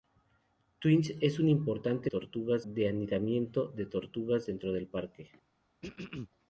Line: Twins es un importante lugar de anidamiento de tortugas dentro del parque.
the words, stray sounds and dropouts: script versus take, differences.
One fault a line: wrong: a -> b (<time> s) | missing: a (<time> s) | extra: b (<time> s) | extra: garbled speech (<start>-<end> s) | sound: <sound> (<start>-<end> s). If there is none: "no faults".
wrong: lugar -> tortugas (2.1 s)
sound: throat clearing (5.8-6.3 s)